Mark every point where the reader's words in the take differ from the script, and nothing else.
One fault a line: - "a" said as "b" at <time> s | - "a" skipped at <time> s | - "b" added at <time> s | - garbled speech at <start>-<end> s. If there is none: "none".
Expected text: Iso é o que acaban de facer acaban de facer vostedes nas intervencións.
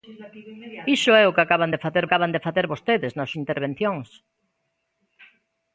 none